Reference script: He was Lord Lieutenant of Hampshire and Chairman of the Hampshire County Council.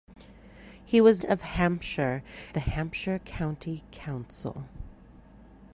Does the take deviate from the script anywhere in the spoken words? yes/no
yes